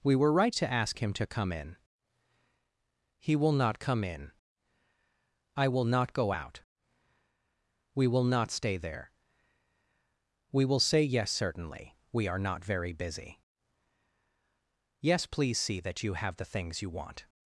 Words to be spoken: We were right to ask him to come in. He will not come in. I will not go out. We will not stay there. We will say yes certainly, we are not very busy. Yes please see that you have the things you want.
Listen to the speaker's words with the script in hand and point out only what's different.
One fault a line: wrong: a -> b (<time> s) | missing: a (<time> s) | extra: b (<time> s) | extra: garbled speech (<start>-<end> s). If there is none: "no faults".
no faults